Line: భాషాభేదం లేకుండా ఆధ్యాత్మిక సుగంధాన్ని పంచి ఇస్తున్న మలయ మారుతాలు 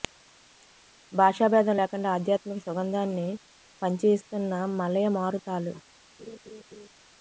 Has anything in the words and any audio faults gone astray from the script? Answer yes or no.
yes